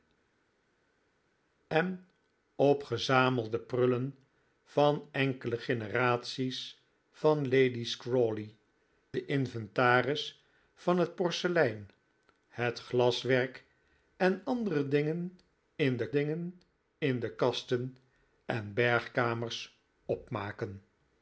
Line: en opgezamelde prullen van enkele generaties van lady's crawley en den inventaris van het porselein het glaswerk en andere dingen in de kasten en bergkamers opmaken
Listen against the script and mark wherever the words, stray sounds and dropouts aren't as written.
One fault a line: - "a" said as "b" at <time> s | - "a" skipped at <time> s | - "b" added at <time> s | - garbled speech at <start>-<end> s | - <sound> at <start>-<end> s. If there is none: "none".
- "en" skipped at 8.5 s
- "dingen in de" added at 16.1 s